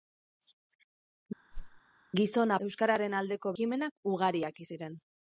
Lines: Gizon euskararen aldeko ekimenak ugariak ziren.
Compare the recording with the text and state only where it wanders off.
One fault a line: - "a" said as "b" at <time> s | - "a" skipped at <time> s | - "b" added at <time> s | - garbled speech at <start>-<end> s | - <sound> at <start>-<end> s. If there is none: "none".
- whoosh at 1.5-1.8 s